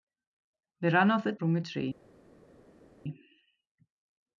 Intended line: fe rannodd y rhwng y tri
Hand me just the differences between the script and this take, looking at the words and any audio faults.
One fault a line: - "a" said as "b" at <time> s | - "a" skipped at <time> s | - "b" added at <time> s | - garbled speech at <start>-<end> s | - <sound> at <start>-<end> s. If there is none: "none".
none